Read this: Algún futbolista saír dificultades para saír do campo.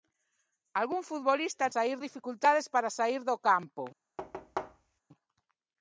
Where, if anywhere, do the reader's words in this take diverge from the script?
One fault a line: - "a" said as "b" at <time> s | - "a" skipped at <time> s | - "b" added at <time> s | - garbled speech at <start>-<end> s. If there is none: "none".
none